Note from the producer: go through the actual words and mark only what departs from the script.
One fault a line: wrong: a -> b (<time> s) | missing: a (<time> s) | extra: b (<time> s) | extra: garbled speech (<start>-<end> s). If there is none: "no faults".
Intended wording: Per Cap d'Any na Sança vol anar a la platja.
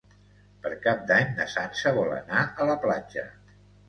no faults